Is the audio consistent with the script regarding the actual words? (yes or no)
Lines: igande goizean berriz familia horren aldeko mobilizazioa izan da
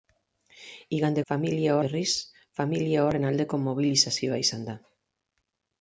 no